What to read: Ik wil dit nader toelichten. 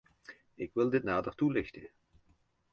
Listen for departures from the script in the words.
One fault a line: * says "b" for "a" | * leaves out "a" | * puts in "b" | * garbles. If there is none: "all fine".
all fine